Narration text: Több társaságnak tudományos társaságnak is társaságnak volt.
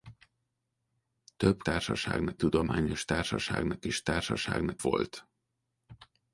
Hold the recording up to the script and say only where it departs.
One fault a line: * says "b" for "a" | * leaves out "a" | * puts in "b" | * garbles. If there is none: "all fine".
all fine